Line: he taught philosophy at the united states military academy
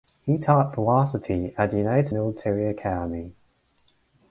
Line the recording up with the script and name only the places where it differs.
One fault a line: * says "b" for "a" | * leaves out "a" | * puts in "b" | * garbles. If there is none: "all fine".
* leaves out "states"